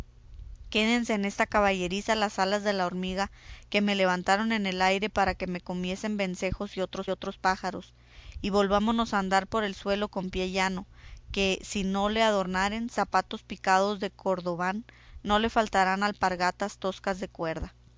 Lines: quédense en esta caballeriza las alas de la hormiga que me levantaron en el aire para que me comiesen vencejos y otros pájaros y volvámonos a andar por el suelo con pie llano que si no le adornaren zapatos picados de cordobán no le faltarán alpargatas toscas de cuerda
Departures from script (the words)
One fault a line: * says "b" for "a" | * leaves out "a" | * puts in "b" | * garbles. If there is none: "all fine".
* puts in "otros"